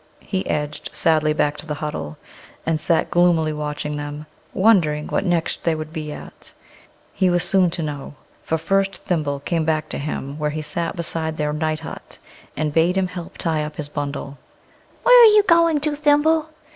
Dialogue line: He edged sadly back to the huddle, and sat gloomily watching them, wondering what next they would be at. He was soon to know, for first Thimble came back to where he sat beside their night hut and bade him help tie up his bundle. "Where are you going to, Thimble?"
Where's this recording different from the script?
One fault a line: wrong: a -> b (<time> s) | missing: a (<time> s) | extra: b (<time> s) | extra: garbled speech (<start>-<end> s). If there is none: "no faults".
extra: him (10.0 s)